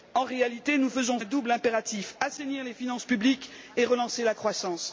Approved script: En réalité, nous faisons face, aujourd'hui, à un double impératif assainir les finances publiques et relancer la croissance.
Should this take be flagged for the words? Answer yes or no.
yes